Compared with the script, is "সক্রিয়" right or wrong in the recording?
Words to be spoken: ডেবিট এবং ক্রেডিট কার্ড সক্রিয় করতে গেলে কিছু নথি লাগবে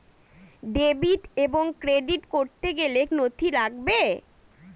wrong